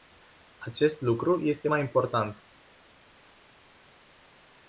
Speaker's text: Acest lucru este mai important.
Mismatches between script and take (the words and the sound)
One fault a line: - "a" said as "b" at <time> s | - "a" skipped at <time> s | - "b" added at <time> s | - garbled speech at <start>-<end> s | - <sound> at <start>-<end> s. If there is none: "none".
none